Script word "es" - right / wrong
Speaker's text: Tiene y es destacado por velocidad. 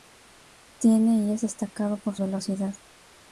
right